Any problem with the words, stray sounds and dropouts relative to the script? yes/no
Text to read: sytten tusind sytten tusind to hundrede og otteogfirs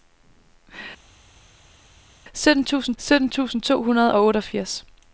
no